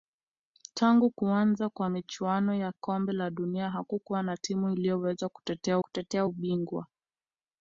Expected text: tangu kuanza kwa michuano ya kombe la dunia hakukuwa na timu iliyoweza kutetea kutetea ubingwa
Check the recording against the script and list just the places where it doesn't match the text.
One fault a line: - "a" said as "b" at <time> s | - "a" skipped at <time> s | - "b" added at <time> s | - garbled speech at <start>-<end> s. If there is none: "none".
none